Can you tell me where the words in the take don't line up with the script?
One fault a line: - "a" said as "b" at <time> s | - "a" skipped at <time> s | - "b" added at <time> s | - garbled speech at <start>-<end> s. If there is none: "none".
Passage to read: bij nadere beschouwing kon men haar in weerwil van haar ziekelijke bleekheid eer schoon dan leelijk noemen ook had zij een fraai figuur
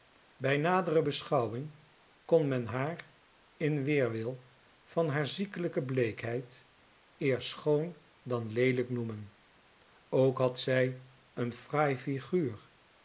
none